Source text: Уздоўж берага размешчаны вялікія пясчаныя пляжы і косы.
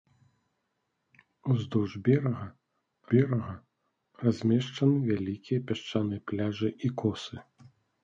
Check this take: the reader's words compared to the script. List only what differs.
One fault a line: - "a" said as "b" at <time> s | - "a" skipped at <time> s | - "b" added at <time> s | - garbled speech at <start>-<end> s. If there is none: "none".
- "берага" added at 3.1 s